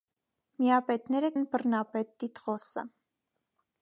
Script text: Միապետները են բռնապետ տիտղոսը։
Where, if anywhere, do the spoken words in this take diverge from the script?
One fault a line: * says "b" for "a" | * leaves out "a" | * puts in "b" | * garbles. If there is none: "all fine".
all fine